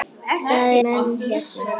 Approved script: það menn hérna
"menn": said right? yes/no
yes